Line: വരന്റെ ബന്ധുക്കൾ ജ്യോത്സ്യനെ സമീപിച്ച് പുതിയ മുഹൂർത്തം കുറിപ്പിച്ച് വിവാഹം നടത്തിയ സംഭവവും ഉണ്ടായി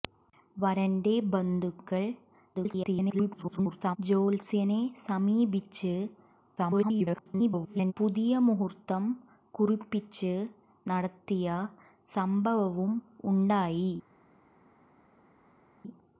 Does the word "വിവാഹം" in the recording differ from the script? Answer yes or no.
yes